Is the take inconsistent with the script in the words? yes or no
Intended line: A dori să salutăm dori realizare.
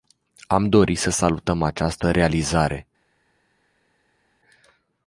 yes